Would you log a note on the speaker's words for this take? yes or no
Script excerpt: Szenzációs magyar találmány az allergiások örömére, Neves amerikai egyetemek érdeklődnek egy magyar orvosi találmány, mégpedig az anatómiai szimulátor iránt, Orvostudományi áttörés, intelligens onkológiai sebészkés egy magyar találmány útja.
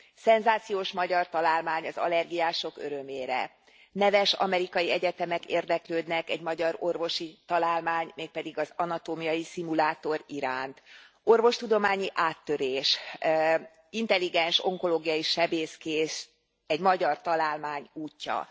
no